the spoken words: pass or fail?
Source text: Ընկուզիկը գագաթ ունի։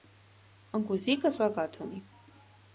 pass